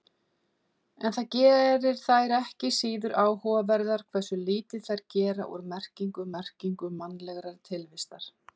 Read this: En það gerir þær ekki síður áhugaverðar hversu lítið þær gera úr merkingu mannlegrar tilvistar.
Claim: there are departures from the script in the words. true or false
true